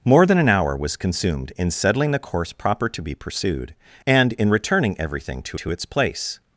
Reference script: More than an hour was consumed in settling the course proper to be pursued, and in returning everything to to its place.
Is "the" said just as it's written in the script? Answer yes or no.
yes